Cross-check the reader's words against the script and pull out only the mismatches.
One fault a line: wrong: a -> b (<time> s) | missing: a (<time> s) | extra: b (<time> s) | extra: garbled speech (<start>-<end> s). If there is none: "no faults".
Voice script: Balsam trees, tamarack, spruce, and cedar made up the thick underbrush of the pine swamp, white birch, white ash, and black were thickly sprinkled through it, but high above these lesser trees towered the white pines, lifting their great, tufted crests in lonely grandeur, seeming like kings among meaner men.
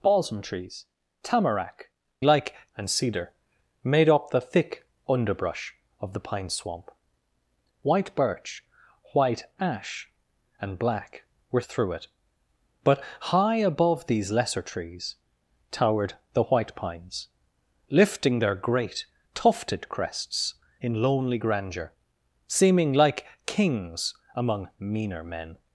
wrong: spruce -> like (2.2 s)
missing: thickly sprinkled (11.6 s)